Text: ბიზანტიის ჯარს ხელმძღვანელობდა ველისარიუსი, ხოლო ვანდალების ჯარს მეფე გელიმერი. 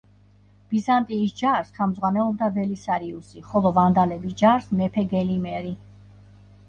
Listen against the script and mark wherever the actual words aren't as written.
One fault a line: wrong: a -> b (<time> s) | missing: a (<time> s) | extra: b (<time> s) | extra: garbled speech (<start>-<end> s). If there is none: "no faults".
no faults